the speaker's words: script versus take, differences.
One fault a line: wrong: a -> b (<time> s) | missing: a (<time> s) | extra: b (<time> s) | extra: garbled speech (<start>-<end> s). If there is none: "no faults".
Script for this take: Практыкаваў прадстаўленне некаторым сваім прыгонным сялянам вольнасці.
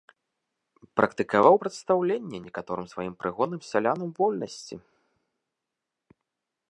no faults